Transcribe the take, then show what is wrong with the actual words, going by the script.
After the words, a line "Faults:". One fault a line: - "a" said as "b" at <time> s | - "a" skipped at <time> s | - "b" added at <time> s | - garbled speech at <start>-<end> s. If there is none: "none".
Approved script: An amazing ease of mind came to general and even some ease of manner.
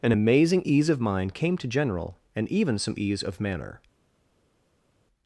An amazing ease of mind came to general and even some ease of manner.
Faults:
none